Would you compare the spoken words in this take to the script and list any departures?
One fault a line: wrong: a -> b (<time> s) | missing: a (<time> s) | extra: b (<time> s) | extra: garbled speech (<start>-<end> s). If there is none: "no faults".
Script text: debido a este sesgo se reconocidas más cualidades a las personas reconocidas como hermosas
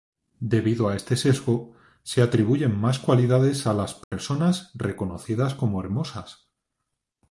wrong: reconocidas -> atribuyen (2.2 s)